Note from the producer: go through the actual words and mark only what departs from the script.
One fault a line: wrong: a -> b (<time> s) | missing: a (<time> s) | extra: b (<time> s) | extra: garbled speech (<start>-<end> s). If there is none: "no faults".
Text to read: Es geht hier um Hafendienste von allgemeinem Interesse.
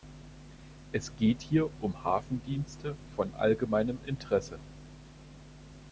no faults